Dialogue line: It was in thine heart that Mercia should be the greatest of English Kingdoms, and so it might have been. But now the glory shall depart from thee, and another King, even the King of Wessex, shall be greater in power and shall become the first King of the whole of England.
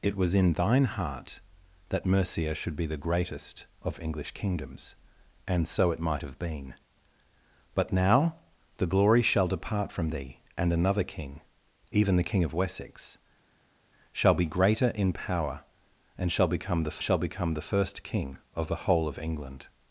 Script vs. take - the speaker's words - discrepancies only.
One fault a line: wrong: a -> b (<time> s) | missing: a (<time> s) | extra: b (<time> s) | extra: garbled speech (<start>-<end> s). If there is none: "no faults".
extra: shall become the (17.0 s)